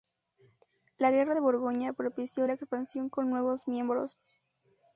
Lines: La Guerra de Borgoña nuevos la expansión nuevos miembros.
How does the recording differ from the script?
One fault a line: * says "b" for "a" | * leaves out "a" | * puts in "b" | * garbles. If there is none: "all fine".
* says "propició" for "nuevos"
* puts in "con"